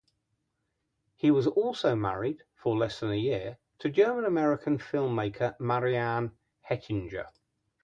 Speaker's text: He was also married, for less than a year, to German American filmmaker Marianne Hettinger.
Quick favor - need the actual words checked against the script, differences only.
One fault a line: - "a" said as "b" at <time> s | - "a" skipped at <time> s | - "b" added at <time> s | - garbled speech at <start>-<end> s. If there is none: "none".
none